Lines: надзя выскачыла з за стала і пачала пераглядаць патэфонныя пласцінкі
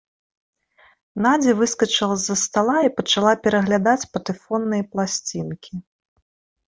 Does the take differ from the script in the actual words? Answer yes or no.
no